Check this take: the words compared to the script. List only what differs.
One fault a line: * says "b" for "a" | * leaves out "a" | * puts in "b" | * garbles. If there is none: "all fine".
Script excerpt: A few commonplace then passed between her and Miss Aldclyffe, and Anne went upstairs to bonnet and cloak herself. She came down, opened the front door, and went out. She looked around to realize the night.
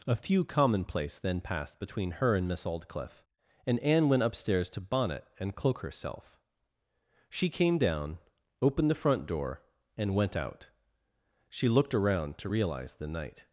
all fine